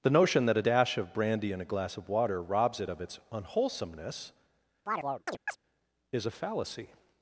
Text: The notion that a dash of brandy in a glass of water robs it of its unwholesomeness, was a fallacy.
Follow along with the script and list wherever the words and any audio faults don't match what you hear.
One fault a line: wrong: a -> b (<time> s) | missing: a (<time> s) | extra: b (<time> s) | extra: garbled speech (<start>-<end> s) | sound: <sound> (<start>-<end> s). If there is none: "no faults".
sound: chirp (4.9-5.6 s)
wrong: was -> is (6.1 s)